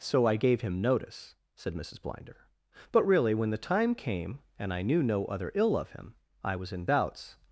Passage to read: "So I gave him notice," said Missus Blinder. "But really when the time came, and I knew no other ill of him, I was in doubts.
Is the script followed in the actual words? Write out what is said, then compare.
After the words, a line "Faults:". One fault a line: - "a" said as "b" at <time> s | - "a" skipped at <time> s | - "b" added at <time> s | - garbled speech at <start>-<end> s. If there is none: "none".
"So I gave him notice," said Missus Blinder. "But really when the time came, and I knew no other ill of him, I was in doubts.
Faults:
none